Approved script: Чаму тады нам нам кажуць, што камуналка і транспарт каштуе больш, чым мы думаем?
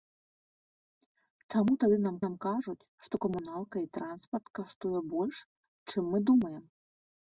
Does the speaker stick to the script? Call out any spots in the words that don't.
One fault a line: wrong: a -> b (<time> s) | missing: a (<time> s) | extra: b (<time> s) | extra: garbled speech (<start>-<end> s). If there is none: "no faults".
no faults